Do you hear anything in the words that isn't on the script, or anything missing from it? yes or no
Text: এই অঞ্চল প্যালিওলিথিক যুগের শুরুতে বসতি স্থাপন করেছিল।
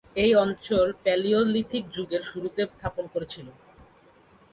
yes